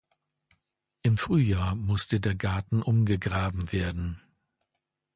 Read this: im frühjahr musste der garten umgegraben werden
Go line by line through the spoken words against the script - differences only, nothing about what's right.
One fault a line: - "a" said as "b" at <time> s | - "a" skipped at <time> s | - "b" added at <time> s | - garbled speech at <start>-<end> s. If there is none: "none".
none